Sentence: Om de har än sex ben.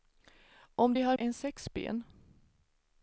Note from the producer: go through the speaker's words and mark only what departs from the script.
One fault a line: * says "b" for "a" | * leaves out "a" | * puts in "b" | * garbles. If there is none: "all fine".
all fine